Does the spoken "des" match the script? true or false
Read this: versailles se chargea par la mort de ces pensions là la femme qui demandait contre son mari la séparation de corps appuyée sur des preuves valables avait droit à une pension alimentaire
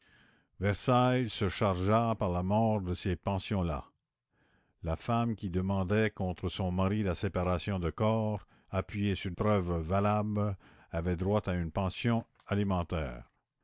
false